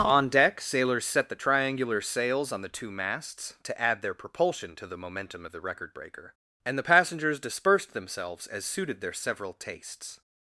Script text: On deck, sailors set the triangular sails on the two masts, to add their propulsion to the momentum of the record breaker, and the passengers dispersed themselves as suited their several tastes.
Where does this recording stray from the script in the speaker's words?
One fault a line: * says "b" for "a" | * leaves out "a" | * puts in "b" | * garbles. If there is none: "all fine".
all fine